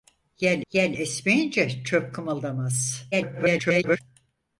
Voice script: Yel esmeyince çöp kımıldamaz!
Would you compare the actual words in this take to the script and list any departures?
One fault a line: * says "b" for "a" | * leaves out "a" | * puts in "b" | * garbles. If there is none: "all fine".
* puts in "yel"
* garbles